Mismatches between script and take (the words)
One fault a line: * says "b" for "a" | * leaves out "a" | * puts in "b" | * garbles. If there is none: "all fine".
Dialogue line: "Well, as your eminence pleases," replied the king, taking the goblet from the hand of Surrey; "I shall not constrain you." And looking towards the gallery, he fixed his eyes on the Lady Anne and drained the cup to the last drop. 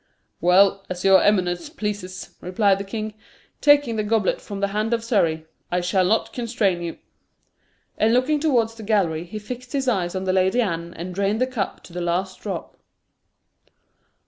all fine